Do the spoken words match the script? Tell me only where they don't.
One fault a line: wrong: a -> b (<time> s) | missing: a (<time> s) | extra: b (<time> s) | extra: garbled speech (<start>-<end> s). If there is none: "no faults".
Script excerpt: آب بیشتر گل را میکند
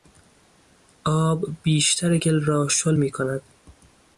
extra: شل (2.7 s)